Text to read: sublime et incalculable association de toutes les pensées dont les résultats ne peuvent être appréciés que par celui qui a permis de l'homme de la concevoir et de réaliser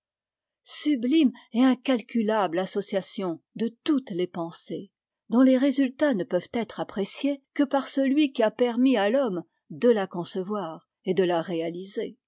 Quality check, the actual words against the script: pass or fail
fail